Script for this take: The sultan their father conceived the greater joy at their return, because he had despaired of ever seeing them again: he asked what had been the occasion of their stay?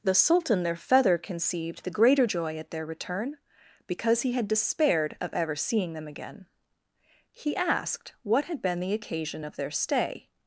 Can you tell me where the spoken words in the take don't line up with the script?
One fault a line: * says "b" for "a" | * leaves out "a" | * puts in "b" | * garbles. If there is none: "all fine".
* says "feather" for "father"